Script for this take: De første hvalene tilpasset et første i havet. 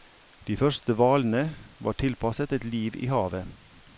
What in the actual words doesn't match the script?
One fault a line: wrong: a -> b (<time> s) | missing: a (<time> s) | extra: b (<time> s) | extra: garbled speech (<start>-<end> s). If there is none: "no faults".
extra: var (1.8 s)
wrong: første -> liv (2.6 s)